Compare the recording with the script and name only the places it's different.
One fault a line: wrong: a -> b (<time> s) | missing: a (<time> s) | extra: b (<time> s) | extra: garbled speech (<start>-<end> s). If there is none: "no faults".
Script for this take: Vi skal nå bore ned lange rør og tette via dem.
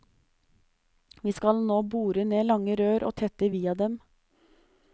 no faults